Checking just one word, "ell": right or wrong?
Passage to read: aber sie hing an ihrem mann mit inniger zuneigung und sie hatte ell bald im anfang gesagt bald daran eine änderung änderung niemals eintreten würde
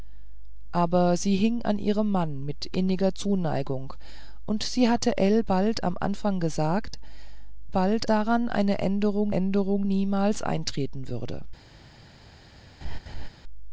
right